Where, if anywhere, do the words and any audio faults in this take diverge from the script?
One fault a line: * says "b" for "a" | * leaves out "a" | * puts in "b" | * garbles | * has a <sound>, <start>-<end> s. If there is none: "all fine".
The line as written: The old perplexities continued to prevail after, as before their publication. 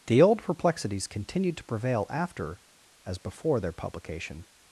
all fine